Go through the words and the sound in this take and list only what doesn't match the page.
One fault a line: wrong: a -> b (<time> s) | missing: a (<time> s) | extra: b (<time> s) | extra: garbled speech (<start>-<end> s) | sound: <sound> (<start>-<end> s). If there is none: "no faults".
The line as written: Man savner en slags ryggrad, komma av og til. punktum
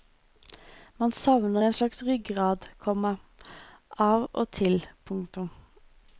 no faults